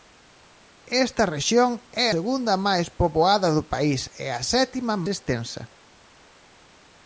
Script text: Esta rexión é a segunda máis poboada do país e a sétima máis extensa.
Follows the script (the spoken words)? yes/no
no